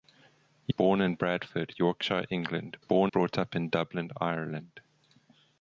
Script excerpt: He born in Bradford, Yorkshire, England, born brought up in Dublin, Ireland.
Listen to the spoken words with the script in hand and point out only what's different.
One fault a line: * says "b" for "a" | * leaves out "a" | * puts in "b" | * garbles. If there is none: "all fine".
all fine